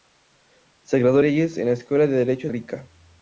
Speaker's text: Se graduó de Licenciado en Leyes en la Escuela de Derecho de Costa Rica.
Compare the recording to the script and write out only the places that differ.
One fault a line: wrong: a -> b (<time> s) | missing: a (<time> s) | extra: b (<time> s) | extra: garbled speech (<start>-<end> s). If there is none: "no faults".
missing: de Licenciado en (1.2 s)
missing: de Costa (2.5 s)